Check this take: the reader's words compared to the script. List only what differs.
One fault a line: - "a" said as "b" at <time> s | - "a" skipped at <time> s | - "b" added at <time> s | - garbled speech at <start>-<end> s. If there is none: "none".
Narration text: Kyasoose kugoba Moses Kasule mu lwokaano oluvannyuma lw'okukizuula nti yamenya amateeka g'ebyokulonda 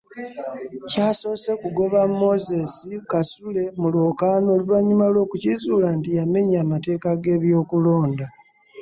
none